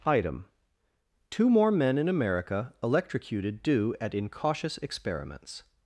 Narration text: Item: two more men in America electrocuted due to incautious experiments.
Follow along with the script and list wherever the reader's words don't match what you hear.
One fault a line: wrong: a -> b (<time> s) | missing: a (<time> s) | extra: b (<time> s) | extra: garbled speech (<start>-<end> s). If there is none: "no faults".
wrong: to -> at (4.0 s)